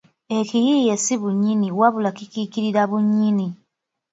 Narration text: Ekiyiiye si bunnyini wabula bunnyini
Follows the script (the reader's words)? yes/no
no